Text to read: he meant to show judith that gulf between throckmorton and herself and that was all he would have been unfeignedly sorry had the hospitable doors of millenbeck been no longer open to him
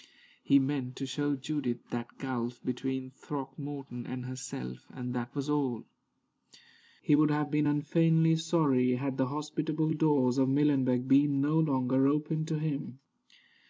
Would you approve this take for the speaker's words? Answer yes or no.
yes